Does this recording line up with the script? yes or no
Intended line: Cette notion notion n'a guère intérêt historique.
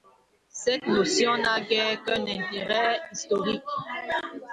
no